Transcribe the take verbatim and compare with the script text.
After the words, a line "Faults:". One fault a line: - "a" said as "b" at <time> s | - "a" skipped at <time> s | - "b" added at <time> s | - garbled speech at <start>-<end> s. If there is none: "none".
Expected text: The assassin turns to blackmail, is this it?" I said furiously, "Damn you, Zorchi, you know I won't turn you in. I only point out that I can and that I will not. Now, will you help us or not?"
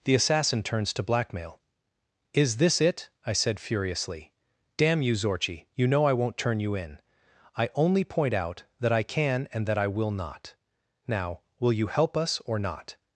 The assassin turns to blackmail, is this it?" I said furiously, "Damn you, Zorchi, you know I won't turn you in. I only point out that I can and that I will not. Now, will you help us or not?"
Faults:
none